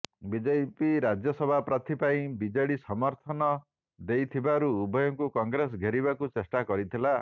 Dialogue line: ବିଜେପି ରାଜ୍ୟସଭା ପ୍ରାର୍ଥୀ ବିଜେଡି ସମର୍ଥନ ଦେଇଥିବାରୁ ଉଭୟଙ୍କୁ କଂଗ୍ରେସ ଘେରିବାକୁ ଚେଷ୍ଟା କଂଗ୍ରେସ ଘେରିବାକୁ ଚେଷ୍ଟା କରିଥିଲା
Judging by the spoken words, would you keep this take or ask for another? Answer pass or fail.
fail